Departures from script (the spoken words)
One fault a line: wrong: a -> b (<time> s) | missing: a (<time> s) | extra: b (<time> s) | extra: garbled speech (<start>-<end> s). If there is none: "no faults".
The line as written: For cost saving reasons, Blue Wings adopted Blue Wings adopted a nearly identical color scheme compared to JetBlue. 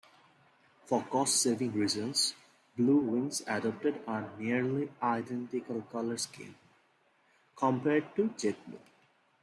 missing: Blue Wings adopted (4.0 s)